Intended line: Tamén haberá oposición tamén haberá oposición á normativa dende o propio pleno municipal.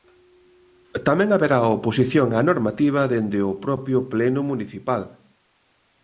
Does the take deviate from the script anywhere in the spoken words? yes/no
yes